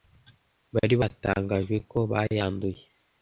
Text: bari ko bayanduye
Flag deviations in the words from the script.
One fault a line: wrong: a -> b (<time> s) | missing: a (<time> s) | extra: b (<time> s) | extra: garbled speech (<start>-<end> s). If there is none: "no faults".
extra: batangajwe (1.0 s)